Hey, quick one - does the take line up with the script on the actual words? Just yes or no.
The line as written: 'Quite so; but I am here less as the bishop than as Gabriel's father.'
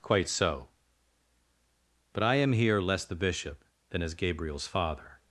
no